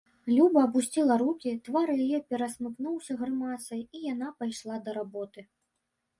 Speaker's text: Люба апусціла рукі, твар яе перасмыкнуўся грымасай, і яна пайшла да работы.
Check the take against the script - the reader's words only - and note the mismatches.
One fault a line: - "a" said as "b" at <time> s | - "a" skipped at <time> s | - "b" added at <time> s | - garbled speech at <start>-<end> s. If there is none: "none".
none